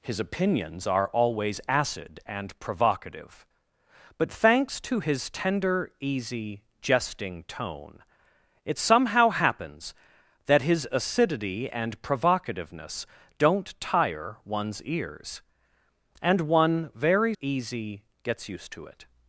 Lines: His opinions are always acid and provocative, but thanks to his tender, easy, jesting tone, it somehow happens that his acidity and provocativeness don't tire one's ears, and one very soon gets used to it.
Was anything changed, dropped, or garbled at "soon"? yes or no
yes